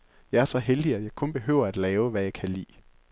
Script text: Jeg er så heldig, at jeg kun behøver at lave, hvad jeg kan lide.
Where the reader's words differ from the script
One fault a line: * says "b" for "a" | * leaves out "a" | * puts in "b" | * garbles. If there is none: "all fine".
all fine